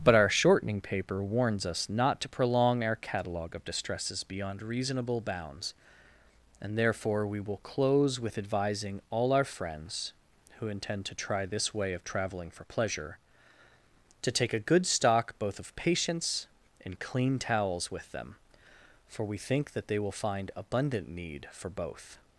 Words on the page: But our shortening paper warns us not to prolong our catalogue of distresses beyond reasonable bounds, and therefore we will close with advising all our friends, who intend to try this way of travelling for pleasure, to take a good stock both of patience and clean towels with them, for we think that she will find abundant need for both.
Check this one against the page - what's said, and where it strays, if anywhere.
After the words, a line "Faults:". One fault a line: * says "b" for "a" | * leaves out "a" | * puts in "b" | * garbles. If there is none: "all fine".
But our shortening paper warns us not to prolong our catalogue of distresses beyond reasonable bounds, and therefore we will close with advising all our friends, who intend to try this way of travelling for pleasure, to take a good stock both of patience and clean towels with them, for we think that they will find abundant need for both.
Faults:
* says "they" for "she"